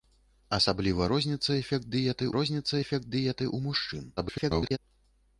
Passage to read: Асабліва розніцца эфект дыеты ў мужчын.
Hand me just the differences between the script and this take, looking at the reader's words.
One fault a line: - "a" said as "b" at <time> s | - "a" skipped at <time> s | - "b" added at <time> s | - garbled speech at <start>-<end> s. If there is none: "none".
- "розніцца эфект дыеты" added at 2.4 s
- garbled speech at 4.2-4.8 s